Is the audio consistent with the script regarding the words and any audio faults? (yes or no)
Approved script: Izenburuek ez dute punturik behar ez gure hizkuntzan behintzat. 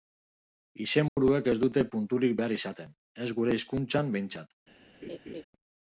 no